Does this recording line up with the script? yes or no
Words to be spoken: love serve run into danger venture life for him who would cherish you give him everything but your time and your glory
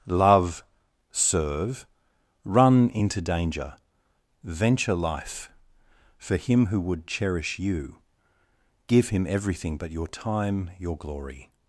no